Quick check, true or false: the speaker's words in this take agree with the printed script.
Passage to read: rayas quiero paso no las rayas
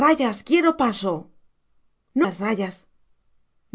true